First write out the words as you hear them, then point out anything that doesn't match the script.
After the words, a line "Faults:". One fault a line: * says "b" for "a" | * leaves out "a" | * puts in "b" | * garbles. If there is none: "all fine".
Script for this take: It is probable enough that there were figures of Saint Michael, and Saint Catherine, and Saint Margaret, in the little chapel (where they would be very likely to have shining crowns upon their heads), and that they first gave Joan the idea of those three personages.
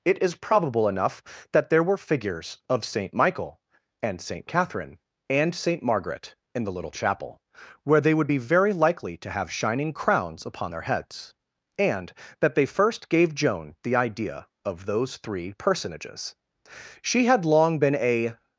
It is probable enough that there were figures of Saint Michael, and Saint Catherine, and Saint Margaret, in the little chapel (where they would be very likely to have shining crowns upon their heads), and that they first gave Joan the idea of those three personages. She had long been a
Faults:
* puts in "She had long been a"